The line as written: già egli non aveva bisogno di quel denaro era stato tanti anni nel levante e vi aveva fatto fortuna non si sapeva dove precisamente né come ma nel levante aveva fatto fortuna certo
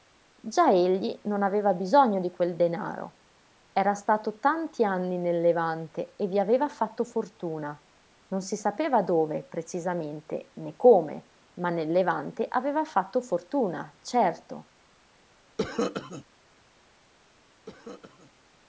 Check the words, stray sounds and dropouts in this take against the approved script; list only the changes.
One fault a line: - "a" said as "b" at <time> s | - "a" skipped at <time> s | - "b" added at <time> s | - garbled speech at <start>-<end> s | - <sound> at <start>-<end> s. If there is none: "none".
- cough at 15.6-16.2 s
- cough at 17.7-18.3 s